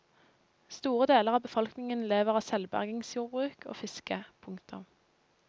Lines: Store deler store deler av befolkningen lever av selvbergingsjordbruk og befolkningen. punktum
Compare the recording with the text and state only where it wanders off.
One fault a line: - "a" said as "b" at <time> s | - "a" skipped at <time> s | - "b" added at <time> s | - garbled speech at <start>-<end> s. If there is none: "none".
- "store deler" skipped at 1.4 s
- "befolkningen" said as "fiske" at 3.8 s